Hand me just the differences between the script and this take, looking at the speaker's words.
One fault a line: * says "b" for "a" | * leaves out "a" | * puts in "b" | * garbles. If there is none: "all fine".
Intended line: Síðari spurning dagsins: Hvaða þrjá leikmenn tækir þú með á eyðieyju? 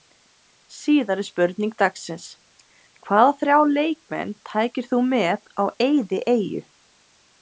all fine